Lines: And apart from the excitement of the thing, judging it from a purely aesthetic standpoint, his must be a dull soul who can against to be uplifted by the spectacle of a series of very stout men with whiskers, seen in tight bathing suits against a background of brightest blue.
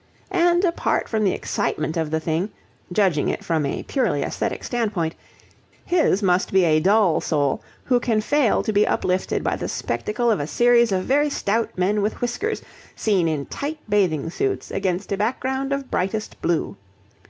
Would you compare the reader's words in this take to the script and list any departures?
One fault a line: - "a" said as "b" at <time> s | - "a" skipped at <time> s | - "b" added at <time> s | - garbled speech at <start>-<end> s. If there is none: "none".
- "against" said as "fail" at 8.2 s